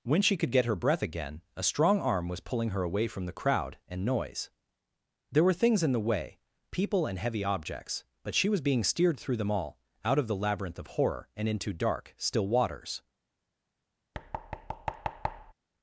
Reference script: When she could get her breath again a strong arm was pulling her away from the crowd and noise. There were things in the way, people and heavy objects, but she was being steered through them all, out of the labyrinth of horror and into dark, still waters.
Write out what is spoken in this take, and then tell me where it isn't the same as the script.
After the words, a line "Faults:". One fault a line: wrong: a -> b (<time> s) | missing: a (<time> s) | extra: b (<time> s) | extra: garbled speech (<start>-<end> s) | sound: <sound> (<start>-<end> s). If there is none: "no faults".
When she could get her breath again a strong arm was pulling her away from the crowd and noise. There were things in the way, people and heavy objects, but she was being steered through them all, out of the labyrinth of horror and into dark, still waters.
Faults:
sound: thud (14.1-15.5 s)